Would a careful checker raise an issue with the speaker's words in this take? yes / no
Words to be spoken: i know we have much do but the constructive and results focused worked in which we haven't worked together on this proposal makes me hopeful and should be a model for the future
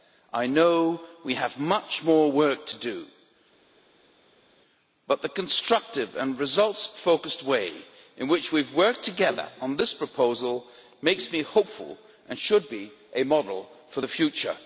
yes